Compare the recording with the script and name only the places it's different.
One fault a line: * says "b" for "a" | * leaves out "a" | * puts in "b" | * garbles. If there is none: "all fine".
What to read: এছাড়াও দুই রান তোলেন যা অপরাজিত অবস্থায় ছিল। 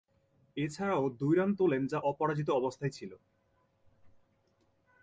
all fine